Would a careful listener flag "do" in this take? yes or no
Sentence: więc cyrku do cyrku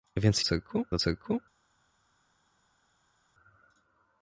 no